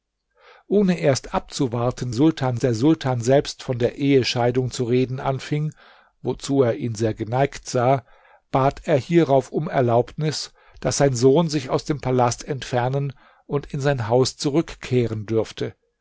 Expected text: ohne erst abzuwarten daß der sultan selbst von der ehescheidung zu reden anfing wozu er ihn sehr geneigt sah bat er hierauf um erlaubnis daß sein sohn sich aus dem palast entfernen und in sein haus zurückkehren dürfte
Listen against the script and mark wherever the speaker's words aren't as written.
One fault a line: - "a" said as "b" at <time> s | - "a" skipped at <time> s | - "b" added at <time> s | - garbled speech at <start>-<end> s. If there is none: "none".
- "daß" said as "sultan" at 2.1 s